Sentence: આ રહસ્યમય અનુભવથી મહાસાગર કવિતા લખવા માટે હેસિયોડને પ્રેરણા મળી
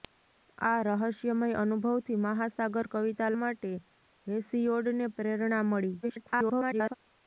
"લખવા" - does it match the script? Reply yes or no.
no